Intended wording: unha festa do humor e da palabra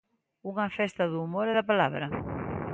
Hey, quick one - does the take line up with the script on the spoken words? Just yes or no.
yes